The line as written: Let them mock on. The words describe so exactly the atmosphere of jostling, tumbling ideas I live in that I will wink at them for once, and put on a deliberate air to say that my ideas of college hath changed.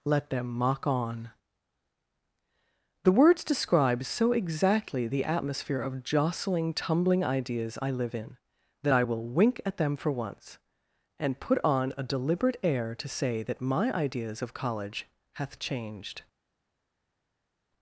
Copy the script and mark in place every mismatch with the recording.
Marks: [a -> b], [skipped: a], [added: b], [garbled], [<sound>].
Let them mock on. The words describe so exactly the atmosphere of jostling, tumbling ideas I live in that I will wink at them for once, and put on a deliberate air to say that my ideas of college hath changed.